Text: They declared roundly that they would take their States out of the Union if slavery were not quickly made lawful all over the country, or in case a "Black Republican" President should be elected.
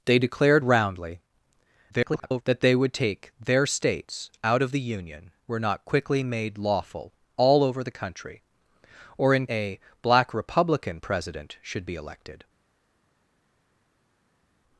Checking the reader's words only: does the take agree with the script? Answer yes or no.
no